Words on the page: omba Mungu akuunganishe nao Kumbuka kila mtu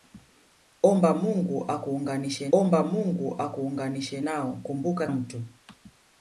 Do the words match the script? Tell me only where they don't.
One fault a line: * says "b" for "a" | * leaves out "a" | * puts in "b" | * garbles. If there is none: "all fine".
* puts in "omba Mungu akuunganishe"
* leaves out "kila"